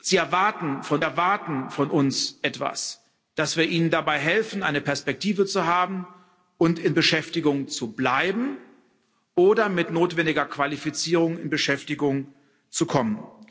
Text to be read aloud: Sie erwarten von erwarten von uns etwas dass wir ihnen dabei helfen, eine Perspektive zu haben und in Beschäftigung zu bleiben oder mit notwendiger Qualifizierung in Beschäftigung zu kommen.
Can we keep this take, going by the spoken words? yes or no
yes